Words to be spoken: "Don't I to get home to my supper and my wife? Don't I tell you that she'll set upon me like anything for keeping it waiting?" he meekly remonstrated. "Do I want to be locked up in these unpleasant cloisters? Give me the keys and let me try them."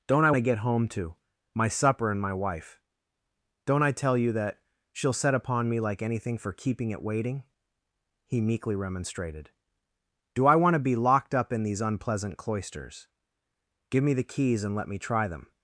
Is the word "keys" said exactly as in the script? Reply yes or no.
yes